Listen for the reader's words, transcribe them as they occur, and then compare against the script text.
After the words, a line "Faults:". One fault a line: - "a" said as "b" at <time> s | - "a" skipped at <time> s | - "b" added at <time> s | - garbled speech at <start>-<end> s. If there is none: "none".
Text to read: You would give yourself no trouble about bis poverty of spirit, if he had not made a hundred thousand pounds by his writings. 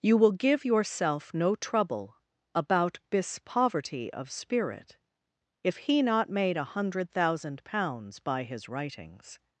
You will give yourself no trouble about bis poverty of spirit, if he not made a hundred thousand pounds by his writings.
Faults:
- "would" said as "will" at 0.2 s
- "had" skipped at 6.0 s